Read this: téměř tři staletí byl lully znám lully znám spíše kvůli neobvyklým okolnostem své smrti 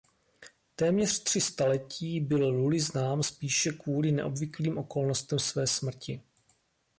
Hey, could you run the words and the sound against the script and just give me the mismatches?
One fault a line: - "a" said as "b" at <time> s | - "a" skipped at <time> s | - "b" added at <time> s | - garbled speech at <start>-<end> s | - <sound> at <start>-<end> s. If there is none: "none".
- "lully znám" skipped at 3.2 s